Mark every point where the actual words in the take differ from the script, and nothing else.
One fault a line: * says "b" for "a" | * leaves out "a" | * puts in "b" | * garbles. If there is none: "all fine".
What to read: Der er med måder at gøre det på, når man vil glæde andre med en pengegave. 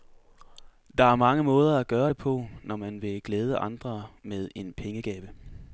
* says "mange" for "med"